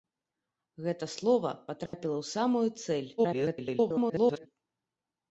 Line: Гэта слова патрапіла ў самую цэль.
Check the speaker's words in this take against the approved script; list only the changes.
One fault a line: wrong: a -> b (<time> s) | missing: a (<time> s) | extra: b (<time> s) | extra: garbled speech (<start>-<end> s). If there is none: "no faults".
extra: garbled speech (3.2-4.5 s)